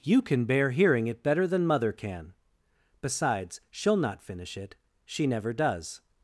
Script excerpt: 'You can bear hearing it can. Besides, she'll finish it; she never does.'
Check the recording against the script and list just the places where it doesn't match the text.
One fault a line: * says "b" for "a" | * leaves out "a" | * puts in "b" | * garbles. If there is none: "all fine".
* puts in "better than mother"
* puts in "not"